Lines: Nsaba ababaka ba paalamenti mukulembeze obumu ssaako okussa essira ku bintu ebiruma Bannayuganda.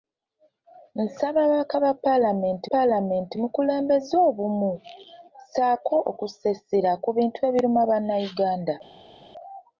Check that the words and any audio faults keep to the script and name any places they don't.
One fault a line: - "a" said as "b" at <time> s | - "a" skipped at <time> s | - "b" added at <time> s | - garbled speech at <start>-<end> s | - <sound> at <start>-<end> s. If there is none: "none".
- "paalamenti" added at 2.7 s